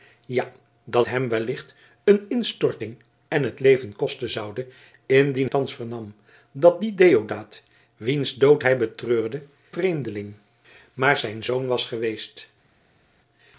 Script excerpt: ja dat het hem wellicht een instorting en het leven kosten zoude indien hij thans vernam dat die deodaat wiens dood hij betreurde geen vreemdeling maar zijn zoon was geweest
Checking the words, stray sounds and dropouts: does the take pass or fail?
fail